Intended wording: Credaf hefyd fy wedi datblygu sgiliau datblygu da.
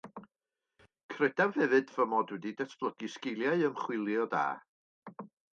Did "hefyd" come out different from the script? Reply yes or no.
no